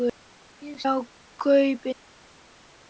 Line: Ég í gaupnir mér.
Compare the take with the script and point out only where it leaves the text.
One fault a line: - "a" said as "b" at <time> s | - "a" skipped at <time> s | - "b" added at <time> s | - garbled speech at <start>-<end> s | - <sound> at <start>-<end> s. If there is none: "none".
none